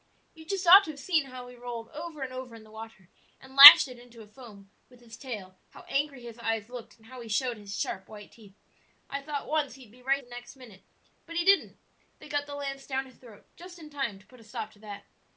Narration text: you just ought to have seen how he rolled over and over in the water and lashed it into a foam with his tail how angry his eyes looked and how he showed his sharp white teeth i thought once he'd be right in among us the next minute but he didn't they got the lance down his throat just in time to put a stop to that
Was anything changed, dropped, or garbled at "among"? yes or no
yes